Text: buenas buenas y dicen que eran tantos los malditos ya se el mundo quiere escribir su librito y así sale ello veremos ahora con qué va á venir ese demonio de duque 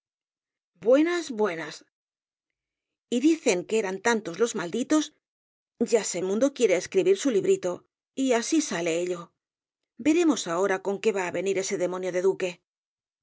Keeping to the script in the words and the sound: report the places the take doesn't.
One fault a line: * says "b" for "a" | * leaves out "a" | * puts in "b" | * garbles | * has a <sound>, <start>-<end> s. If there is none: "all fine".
all fine